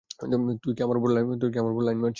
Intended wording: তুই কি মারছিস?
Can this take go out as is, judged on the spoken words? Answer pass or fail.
fail